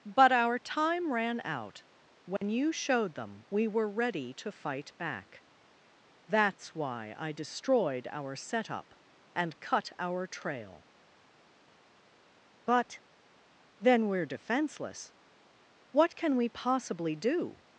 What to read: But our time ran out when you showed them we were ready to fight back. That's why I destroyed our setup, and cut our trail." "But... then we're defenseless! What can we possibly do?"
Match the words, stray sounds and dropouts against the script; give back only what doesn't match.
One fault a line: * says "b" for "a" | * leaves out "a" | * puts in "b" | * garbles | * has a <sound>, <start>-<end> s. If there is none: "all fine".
* has a dropout, 2.4-2.4 s